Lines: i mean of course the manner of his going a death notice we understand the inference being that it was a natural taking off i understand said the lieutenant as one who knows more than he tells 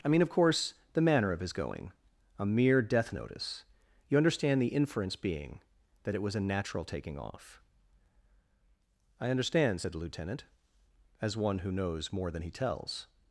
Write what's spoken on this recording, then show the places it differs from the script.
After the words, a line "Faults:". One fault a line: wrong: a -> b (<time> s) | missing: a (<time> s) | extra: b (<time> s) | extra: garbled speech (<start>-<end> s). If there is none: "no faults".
i mean of course the manner of his going a mere death notice you understand the inference being that it was a natural taking off i understand said the lieutenant as one who knows more than he tells
Faults:
extra: mere (2.5 s)
wrong: we -> you (4.1 s)